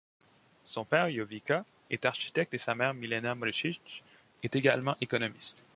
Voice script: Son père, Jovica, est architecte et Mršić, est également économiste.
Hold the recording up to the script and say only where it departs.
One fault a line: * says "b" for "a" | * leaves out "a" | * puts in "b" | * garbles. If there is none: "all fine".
* puts in "sa mère Milena"